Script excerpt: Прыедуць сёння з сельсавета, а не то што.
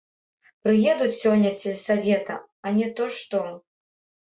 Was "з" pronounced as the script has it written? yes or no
yes